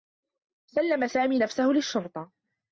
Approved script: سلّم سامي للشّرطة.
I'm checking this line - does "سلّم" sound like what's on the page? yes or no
yes